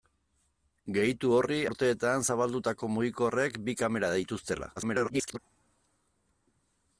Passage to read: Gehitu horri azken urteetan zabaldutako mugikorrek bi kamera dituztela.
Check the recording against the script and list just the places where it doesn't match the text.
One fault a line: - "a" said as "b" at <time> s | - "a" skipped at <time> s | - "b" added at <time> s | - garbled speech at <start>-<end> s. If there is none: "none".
- "azken" skipped at 1.6 s
- garbled speech at 4.8-5.4 s